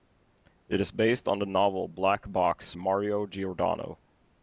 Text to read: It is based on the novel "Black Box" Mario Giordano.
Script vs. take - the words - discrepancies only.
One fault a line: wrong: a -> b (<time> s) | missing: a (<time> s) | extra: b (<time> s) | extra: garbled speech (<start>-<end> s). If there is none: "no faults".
no faults